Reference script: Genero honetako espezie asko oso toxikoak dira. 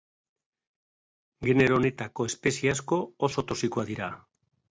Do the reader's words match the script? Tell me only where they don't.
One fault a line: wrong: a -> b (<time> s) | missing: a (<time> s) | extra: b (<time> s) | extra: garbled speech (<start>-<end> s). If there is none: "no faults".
no faults